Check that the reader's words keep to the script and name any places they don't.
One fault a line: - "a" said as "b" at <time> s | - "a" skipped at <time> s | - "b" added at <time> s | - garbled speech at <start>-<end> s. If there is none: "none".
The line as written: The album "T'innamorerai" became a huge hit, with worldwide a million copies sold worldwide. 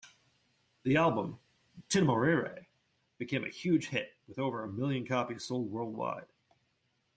- "worldwide" said as "over" at 4.4 s